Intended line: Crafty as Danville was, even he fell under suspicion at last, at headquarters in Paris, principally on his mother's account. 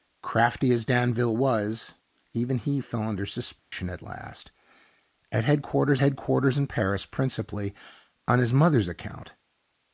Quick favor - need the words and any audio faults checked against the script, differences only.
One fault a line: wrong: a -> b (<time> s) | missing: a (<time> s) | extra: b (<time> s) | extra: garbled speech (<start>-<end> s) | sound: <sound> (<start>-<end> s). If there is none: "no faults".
sound: dropout (3.6-3.7 s)
extra: headquarters (6.0 s)